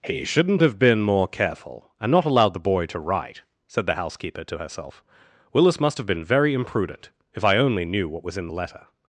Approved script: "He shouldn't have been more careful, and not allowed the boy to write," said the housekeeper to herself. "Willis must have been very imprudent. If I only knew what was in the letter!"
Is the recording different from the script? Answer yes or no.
no